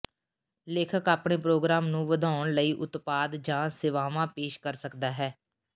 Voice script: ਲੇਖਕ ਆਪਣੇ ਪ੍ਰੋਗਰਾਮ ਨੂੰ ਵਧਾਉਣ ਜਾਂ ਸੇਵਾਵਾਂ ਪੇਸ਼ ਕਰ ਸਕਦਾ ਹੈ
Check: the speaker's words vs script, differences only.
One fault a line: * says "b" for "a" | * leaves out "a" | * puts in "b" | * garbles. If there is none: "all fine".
* puts in "ਲਈ ਉਤਪਾਦ"